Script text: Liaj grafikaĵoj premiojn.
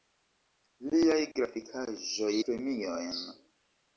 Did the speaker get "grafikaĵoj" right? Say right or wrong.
right